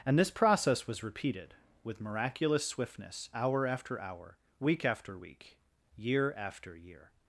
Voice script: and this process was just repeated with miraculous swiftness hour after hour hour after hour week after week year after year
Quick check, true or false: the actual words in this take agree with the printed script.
false